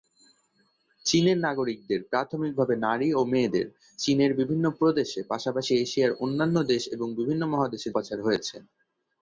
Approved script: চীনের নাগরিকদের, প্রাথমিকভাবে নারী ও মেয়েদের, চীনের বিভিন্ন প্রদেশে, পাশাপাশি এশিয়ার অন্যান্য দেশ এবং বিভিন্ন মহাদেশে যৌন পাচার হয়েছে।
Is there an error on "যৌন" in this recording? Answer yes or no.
yes